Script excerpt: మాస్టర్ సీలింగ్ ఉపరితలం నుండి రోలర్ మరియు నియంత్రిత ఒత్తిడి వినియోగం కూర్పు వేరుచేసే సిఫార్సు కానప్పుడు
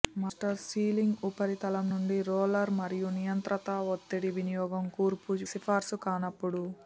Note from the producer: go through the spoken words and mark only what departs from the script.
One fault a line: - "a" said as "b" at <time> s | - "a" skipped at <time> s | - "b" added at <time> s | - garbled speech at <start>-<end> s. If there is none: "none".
- "వేరుచేసే" skipped at 5.3 s